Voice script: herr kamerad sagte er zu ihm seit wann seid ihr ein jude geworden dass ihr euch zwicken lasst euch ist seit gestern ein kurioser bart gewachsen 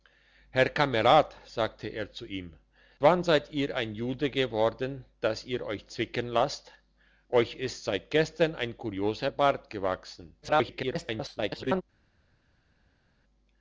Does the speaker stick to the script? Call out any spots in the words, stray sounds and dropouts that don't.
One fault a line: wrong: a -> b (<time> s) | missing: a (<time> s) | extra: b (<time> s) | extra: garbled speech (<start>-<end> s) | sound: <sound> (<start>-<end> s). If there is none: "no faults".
missing: seit (2.5 s)
extra: garbled speech (10.4-11.8 s)